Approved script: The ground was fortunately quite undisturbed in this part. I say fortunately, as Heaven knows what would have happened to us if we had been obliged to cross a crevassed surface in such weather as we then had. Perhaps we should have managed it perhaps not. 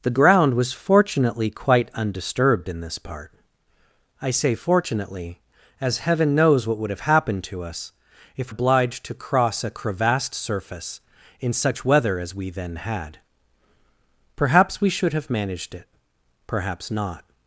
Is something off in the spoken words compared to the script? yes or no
yes